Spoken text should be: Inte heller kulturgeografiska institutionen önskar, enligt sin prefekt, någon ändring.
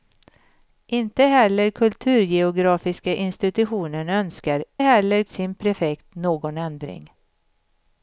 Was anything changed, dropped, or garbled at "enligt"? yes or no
yes